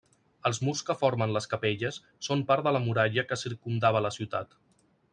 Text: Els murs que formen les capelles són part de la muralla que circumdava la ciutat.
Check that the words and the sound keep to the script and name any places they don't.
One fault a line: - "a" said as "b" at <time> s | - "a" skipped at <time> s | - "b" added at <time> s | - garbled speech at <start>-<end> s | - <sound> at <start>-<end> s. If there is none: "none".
none